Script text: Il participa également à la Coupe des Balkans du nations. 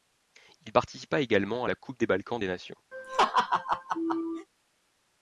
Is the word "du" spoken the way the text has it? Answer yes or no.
no